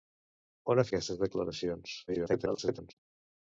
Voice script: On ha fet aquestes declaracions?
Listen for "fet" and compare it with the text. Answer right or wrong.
wrong